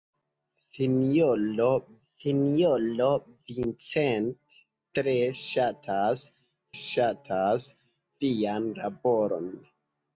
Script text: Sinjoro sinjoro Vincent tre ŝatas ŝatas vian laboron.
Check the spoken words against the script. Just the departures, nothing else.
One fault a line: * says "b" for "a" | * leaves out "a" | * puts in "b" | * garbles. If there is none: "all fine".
all fine